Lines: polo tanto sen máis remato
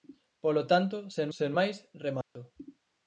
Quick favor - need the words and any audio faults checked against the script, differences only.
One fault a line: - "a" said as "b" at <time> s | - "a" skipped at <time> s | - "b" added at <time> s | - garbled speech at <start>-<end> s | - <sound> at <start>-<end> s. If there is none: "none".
- "sen" added at 1.4 s
- dropout at 2.2-2.4 s